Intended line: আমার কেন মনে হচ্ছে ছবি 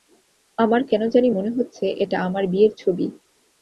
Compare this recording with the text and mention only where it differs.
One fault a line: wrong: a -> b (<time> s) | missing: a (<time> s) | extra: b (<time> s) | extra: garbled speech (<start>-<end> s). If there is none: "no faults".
extra: জানি (1.1 s)
extra: এটা আমার বিয়ের (1.9 s)